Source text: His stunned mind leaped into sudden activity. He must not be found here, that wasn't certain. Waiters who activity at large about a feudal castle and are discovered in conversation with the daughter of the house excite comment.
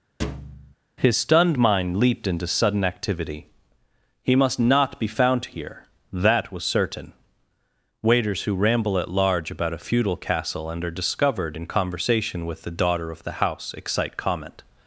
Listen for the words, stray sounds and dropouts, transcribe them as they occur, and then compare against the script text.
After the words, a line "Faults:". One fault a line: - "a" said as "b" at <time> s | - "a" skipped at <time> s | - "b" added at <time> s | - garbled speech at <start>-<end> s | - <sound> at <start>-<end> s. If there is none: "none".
His stunned mind leaped into sudden activity. He must not be found here, that was certain. Waiters who ramble at large about a feudal castle and are discovered in conversation with the daughter of the house excite comment.
Faults:
- thud at 0.2-0.7 s
- "wasn't" said as "was" at 6.5 s
- "activity" said as "ramble" at 8.5 s